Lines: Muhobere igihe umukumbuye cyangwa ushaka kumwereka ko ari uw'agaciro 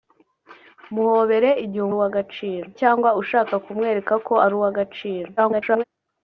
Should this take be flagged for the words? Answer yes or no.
yes